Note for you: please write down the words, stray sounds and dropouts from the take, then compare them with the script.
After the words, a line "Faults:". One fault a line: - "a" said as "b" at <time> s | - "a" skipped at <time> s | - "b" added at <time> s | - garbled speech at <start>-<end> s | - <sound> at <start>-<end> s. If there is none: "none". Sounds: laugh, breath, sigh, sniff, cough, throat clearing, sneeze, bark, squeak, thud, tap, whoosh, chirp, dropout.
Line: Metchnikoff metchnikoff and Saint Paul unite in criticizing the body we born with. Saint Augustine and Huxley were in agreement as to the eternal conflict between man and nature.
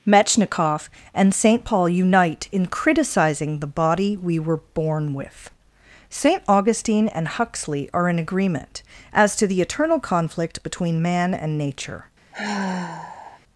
Metchnikoff and Saint Paul unite in criticizing the body we were born with. Saint Augustine and Huxley are in agreement as to the eternal conflict between man and nature.
Faults:
- "metchnikoff" skipped at 0.9 s
- "were" added at 4.4 s
- "were" said as "are" at 7.9 s
- sigh at 12.3-13.4 s